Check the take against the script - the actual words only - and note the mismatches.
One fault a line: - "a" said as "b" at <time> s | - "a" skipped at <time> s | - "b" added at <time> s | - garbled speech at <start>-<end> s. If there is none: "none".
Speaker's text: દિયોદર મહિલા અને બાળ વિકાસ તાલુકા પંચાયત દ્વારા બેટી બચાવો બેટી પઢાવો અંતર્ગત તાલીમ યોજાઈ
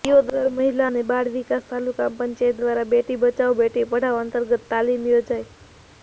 none